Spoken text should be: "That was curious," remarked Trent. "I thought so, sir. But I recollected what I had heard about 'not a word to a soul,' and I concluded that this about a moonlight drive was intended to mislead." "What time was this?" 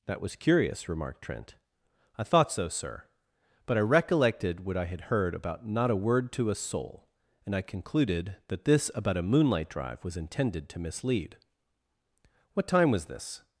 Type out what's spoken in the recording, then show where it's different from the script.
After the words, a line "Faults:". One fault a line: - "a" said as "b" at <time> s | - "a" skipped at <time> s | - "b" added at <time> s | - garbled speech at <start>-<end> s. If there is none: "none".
"That was curious," remarked Trent. "I thought so, sir. But I recollected what I had heard about 'not a word to a soul,' and I concluded that this about a moonlight drive was intended to mislead." "What time was this?"
Faults:
none